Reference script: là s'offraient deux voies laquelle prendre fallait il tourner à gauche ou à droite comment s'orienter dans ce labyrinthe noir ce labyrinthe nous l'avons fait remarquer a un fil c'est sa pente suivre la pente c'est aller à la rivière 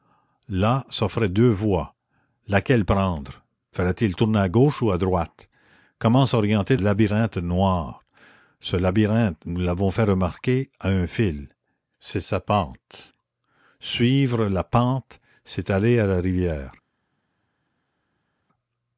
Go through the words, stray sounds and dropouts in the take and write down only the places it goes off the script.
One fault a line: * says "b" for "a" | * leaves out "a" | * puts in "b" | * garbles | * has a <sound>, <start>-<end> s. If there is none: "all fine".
* leaves out "dans ce"